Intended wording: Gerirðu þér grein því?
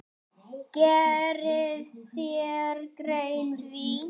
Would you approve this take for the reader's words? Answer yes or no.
yes